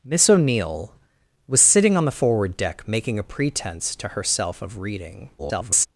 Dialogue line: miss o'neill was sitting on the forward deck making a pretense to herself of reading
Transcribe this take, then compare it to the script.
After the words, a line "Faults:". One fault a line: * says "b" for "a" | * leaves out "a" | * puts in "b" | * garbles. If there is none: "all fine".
miss o'neill was sitting on the forward deck making a pretense to herself of reading [garbled]
Faults:
* garbles